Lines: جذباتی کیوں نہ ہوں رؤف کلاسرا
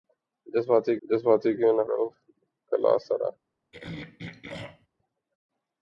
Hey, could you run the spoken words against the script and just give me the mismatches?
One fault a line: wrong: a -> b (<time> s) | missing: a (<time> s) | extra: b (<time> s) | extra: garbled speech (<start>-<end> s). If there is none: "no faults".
extra: جذباتی (1.0 s)
missing: ہوں (1.8 s)